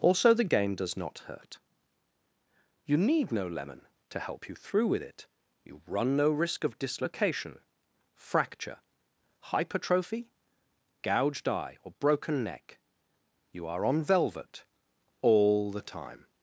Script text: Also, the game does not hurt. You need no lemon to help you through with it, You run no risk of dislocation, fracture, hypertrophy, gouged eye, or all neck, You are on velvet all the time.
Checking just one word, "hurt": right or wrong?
right